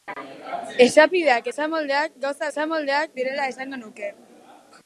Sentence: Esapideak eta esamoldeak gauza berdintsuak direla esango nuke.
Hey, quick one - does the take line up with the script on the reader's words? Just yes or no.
no